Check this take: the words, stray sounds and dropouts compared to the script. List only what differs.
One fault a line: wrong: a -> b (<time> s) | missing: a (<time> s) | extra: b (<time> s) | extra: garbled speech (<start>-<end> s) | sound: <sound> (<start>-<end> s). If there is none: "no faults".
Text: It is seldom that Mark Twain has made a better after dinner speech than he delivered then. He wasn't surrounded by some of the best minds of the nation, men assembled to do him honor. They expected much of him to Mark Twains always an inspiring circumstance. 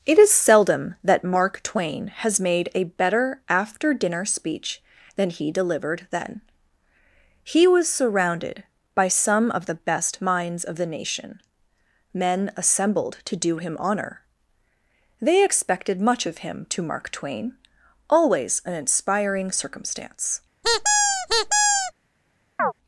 wrong: wasn't -> was (7.7 s)
wrong: Twains -> Twain (17.1 s)
sound: squeak (20.6-21.9 s)
sound: chirp (22.6-22.7 s)